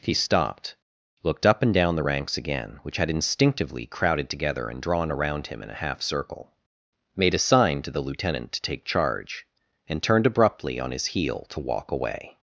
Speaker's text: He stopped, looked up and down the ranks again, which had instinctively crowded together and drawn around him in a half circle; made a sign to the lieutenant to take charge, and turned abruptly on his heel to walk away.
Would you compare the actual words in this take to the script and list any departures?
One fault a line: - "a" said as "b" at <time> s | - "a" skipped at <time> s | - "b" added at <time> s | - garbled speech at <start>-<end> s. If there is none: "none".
none